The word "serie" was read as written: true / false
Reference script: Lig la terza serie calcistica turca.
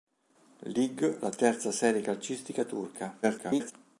true